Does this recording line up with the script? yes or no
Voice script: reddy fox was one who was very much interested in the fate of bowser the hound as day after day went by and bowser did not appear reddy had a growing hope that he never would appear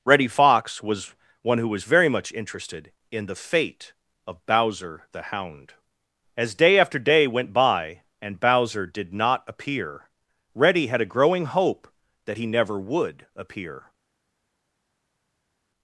yes